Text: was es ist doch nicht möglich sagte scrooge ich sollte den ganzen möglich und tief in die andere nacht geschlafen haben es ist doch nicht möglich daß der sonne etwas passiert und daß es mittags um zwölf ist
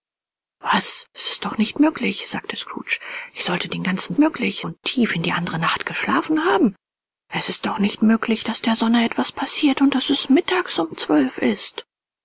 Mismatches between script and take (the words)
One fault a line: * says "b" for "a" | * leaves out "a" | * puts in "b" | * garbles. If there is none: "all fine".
all fine